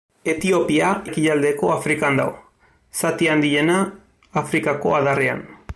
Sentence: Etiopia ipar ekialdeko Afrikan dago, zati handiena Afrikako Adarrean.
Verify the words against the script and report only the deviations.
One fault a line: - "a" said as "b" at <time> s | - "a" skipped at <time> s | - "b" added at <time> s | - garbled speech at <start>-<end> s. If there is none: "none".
- "ipar" skipped at 0.9 s